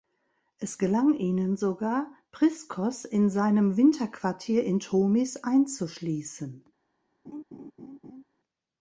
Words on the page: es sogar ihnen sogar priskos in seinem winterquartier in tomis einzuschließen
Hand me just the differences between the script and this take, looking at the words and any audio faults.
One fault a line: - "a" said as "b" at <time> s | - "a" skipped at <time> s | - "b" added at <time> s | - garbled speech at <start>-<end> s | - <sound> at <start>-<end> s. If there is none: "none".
- "sogar" said as "gelang" at 0.8 s
- laugh at 7.3-8.2 s